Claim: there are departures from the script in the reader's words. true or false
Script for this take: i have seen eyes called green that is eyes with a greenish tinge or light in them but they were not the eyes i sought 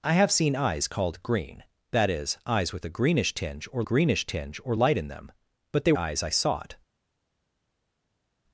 true